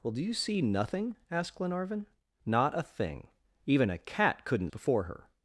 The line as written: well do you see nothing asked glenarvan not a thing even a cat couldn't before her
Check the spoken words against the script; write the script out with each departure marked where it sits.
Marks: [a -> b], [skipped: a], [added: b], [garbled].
well do you see nothing asked glenarvan not a thing even a cat couldn't before her